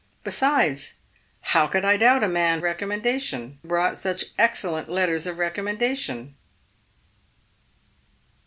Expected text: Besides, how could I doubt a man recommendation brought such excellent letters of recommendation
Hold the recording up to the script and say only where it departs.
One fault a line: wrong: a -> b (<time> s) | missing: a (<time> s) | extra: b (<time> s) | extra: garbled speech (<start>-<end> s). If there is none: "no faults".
no faults